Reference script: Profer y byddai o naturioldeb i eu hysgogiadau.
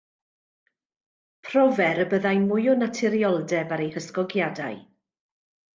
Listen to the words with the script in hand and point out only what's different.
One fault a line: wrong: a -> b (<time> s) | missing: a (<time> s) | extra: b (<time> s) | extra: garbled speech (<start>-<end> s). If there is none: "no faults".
extra: mwy (2.5 s)
wrong: i -> ar (3.8 s)